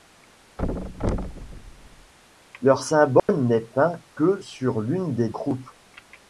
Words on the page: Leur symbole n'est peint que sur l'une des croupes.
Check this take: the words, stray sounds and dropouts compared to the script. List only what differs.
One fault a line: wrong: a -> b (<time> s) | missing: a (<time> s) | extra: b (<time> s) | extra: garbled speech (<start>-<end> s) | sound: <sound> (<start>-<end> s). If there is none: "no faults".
sound: thud (0.6-2.1 s)
sound: dropout (3.2-3.3 s)